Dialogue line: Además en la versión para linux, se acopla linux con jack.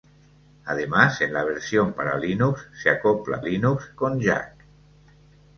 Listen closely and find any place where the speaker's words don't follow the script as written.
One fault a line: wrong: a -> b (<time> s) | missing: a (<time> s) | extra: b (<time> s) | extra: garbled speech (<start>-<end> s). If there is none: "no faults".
no faults